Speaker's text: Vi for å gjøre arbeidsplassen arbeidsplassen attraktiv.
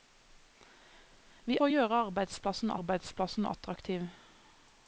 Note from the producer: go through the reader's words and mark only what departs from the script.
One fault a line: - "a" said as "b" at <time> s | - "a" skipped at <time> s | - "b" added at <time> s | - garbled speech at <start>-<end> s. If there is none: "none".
none